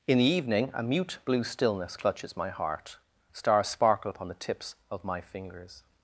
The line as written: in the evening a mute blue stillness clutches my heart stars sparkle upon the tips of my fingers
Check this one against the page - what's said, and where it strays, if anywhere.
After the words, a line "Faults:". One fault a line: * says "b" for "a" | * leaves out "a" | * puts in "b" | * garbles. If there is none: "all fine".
in the evening a mute blue stillness clutches my heart stars sparkle upon the tips of my fingers
Faults:
all fine